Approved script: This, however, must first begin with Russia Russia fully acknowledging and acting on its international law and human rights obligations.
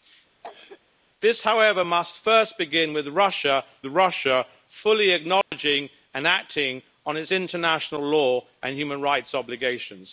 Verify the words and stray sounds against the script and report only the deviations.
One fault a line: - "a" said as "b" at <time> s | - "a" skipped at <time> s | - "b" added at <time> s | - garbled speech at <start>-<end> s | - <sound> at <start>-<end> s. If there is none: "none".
- cough at 0.4-0.8 s
- dropout at 5.4-5.5 s